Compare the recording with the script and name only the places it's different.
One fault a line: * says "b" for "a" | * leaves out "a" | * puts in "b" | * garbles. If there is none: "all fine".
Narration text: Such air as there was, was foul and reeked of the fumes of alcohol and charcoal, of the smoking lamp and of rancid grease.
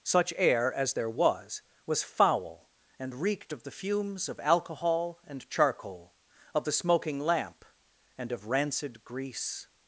all fine